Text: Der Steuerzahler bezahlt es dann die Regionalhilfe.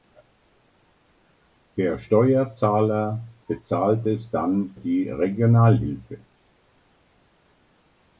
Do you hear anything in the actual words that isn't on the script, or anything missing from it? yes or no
no